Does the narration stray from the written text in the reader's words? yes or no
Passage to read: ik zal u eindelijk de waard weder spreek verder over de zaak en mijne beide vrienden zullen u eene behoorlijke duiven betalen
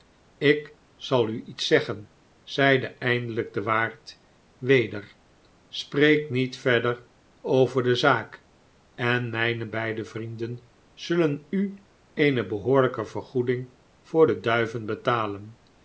yes